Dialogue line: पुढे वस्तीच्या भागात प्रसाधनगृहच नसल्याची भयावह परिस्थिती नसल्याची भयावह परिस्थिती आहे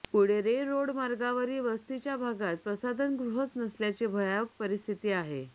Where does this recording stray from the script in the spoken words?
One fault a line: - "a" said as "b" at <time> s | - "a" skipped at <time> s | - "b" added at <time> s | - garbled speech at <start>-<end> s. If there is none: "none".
- "रे रोड मार्गावरील" added at 0.4 s
- "नसल्याची भयावह परिस्थिती" skipped at 5.1 s